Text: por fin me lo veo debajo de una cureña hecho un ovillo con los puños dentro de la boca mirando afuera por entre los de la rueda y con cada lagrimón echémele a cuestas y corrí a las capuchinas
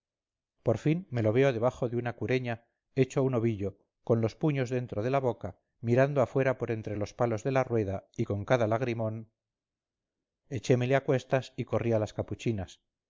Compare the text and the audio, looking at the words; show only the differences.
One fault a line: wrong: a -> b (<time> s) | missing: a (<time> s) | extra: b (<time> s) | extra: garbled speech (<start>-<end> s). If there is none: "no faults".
extra: palos (7.1 s)